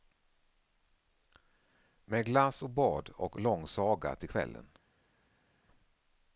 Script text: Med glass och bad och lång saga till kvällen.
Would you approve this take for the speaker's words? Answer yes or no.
yes